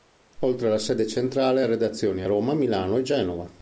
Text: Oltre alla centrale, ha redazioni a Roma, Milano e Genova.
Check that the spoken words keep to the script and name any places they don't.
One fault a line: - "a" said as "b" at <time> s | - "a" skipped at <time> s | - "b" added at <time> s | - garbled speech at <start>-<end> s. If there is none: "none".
- "sede" added at 0.8 s